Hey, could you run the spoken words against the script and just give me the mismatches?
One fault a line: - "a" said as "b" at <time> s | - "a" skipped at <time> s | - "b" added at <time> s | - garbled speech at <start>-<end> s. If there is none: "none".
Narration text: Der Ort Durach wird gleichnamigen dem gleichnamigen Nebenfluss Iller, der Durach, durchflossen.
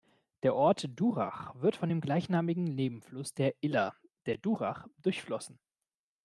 - "gleichnamigen" said as "von" at 1.8 s
- "der" added at 3.3 s